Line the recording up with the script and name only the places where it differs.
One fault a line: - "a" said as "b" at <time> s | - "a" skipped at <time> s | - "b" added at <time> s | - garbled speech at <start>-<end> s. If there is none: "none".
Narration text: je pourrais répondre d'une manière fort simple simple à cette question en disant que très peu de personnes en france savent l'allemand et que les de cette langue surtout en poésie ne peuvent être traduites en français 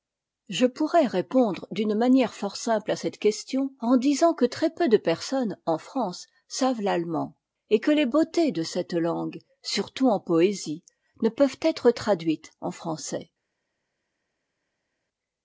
- "simple" skipped at 2.9 s
- "beautés" added at 8.0 s